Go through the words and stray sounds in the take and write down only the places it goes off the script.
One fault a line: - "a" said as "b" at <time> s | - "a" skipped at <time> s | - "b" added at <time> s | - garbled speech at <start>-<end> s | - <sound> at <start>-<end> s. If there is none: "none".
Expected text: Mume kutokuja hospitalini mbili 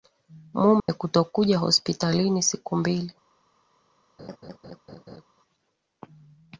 - dropout at 0.8-0.9 s
- "siku" added at 2.4 s
- laugh at 4.2-5.3 s